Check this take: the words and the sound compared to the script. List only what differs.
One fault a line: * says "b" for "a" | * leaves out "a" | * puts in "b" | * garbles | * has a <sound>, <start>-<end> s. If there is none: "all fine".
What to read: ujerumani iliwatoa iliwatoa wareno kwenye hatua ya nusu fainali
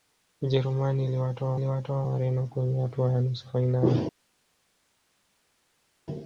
all fine